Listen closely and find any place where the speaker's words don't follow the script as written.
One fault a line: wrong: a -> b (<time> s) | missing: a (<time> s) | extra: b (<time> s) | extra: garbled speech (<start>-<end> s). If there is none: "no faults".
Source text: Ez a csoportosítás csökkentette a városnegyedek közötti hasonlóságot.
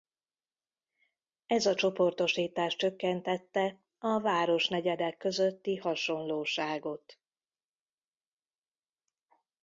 no faults